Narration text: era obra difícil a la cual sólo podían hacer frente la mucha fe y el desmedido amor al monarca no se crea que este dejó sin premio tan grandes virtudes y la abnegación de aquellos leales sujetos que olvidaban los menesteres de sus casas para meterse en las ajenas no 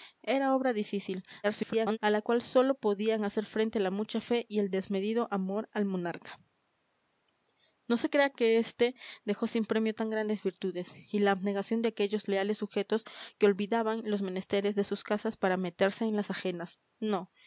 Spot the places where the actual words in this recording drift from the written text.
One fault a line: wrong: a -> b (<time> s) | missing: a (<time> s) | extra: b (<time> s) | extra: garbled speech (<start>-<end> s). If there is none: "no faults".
extra: garbled speech (1.4-2.0 s)